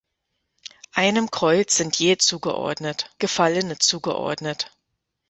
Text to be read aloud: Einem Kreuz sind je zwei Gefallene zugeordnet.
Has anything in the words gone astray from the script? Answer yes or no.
yes